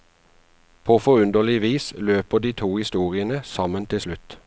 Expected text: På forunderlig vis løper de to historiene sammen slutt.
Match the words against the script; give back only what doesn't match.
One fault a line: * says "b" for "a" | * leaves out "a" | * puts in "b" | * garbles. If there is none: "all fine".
* puts in "til"